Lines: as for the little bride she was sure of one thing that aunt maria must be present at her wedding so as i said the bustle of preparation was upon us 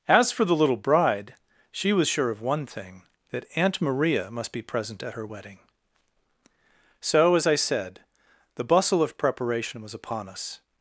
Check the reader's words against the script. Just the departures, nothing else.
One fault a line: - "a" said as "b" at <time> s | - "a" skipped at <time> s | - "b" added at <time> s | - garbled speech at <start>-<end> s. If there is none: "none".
none